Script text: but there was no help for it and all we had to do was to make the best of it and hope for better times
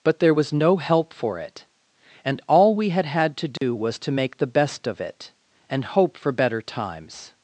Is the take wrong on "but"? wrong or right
right